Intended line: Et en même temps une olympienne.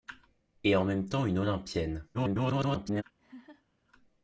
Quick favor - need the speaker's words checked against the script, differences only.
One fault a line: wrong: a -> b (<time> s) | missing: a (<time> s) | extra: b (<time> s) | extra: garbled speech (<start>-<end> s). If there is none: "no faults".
extra: garbled speech (2.1-3.0 s)